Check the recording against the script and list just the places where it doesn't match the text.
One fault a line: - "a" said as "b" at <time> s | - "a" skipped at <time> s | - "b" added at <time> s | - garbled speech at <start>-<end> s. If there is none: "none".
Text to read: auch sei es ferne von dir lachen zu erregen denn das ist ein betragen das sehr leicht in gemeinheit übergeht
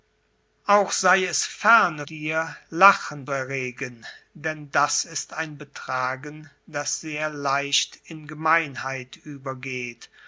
- "von" skipped at 2.1 s
- "zu" skipped at 3.3 s